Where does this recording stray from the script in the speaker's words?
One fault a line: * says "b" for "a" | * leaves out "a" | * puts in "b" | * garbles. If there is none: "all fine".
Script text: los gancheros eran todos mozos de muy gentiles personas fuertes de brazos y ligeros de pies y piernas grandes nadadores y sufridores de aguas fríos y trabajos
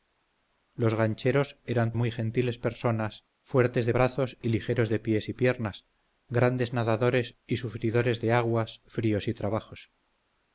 * leaves out "todos mozos de"